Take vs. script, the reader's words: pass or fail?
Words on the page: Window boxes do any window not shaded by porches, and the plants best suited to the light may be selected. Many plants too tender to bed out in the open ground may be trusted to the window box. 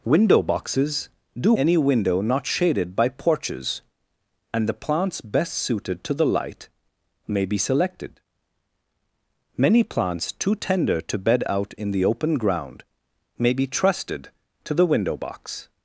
pass